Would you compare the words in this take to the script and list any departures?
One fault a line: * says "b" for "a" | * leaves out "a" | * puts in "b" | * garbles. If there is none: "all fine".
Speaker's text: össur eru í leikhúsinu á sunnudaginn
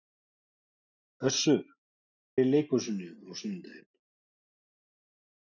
all fine